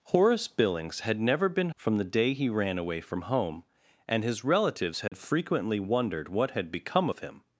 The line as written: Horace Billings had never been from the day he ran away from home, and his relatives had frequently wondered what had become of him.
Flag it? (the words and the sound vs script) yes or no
yes